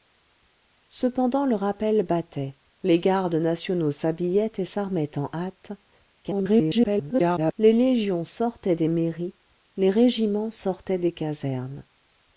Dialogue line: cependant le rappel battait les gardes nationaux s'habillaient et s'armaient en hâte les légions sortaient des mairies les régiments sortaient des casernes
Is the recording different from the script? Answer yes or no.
yes